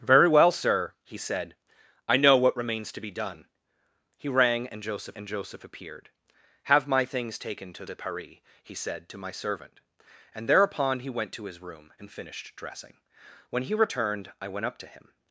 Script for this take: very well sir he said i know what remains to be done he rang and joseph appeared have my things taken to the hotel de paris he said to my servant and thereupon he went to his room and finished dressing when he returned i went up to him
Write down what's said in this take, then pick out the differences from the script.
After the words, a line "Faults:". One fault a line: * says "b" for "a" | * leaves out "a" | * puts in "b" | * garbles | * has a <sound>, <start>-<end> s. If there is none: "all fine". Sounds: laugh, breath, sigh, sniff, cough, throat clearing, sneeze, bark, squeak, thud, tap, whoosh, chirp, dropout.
very well sir he said i know what remains to be done he rang and joseph and joseph appeared have my things taken to de paris he said to my servant and thereupon he went to his room and finished dressing when he returned i went up to him
Faults:
* puts in "and joseph"
* leaves out "the hotel"